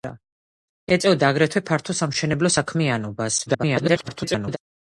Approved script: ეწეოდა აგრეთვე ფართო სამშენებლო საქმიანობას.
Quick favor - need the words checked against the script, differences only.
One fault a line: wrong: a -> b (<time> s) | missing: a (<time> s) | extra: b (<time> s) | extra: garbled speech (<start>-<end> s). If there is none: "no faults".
extra: garbled speech (3.5-4.6 s)